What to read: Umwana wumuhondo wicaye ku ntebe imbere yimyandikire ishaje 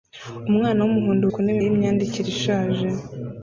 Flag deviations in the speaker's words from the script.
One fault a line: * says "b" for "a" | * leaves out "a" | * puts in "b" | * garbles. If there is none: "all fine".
* leaves out "wicaye"
* leaves out "imbere"